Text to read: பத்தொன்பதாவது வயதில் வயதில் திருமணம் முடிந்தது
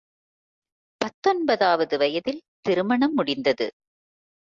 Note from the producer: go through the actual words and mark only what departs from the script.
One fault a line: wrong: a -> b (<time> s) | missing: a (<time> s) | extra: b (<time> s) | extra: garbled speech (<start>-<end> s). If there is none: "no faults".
missing: வயதில் (2.4 s)